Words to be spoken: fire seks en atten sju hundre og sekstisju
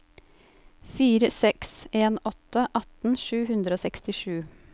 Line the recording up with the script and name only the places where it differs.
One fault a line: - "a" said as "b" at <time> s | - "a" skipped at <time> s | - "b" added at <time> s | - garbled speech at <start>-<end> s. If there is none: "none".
- "åtte" added at 2.3 s